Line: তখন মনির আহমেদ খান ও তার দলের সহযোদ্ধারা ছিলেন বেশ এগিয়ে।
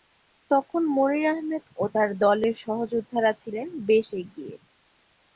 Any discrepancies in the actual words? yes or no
yes